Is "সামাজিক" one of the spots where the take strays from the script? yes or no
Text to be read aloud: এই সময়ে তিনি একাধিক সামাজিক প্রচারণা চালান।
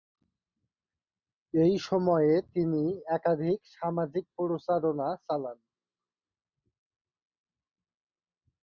no